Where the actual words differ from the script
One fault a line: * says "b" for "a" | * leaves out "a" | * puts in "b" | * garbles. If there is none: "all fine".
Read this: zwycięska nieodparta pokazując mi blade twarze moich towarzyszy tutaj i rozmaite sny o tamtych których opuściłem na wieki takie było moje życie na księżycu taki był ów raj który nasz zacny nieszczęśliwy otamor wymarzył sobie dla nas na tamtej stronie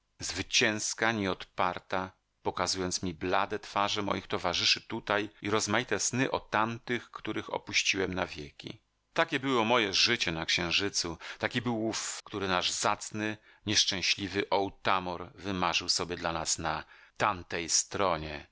* leaves out "raj"